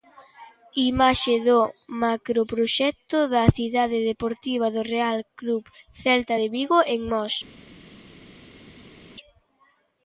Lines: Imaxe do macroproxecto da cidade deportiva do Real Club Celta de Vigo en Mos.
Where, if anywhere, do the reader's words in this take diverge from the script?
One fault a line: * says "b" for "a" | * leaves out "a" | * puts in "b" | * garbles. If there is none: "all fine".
all fine